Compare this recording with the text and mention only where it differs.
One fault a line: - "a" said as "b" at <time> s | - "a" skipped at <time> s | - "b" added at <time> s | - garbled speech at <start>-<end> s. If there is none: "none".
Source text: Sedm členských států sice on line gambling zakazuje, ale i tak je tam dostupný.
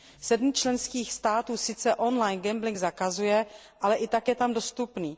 none